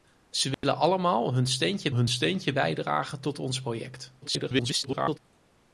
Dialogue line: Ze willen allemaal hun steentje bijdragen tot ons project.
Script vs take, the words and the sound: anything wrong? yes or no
yes